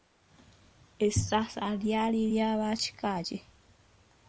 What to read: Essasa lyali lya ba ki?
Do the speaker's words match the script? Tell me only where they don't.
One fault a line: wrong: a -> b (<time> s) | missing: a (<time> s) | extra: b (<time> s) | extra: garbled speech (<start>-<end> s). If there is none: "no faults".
extra: kika (2.8 s)